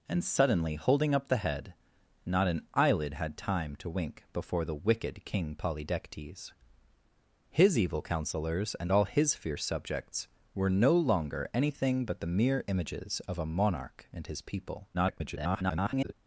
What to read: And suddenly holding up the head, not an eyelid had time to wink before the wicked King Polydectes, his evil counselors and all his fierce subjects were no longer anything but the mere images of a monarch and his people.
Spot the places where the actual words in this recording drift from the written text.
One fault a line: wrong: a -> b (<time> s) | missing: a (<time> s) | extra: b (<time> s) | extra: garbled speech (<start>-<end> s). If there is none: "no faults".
extra: garbled speech (14.9-16.1 s)